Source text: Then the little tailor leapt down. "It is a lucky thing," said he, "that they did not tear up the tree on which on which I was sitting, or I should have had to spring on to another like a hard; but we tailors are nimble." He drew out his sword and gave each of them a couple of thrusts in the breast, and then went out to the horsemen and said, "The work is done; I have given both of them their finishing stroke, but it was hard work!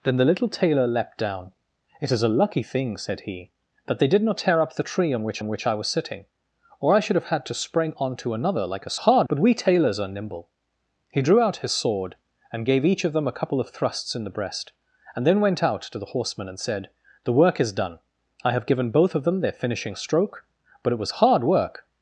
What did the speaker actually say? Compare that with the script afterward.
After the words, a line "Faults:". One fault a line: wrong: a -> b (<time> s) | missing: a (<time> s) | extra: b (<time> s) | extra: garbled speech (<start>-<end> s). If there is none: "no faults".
Then the little tailor leapt down. "It is a lucky thing," said he, "that they did not tear up the tree on which on which I was sitting, or I should have had to spring on to another like a hard; but we tailors are nimble." He drew out his sword and gave each of them a couple of thrusts in the breast, and then went out to the horsemen and said, "The work is done; I have given both of them their finishing stroke, but it was hard work!
Faults:
no faults